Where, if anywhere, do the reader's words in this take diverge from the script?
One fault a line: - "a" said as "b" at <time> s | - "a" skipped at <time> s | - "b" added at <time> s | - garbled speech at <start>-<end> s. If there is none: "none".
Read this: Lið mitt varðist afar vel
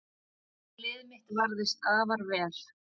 none